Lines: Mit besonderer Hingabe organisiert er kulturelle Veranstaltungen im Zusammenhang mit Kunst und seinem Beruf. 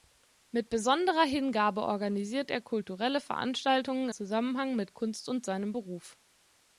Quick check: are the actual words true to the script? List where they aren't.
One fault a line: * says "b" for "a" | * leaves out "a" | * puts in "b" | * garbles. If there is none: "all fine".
* leaves out "im"